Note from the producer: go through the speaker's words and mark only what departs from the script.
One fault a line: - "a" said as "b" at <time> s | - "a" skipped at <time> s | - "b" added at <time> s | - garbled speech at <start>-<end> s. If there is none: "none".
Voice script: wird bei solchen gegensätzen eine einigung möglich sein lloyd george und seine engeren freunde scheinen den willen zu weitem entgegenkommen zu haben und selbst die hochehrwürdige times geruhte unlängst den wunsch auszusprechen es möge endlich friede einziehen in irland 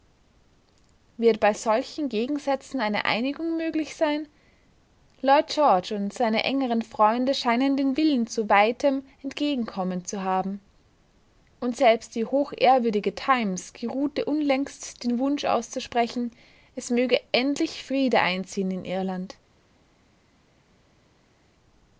none